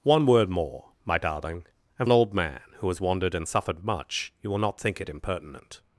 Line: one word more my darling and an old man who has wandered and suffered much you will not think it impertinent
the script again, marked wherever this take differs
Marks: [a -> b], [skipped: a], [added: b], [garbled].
one word more my darling and an old man who has wandered and suffered much you will not think it impertinent